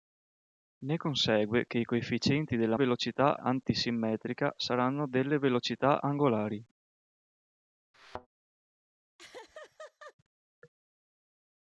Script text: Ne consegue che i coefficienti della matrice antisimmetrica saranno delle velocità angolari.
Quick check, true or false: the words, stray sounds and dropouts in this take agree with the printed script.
false